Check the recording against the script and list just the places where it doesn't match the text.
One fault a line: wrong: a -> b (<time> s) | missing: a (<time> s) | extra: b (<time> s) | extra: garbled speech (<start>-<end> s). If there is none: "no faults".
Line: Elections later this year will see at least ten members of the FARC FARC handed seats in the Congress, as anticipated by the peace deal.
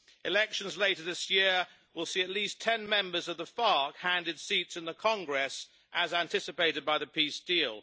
missing: FARC (4.0 s)